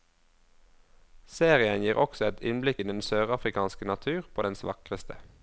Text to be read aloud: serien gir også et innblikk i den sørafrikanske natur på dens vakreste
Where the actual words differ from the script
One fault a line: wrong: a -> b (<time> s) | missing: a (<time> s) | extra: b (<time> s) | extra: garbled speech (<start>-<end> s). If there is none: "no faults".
no faults